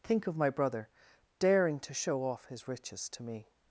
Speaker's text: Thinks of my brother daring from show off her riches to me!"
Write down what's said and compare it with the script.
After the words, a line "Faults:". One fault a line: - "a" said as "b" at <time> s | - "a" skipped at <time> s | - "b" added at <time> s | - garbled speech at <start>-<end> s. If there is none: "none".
Think of my brother daring to show off his riches to me!"
Faults:
- "Thinks" said as "Think" at 0.0 s
- "from" said as "to" at 1.8 s
- "her" said as "his" at 2.5 s